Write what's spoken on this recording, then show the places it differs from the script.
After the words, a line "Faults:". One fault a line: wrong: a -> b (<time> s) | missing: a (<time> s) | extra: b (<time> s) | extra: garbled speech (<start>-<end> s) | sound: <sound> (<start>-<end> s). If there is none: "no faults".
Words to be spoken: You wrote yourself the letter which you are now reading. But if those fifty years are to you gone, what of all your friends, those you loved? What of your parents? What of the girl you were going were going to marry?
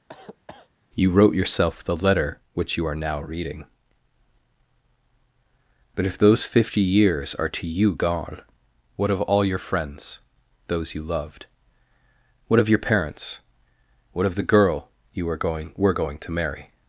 You wrote yourself the letter which you are now reading. But if those fifty years are to you gone, what of all your friends, those you loved? What of your parents? What of the girl you were going were going to marry?
Faults:
sound: cough (0.1-0.7 s)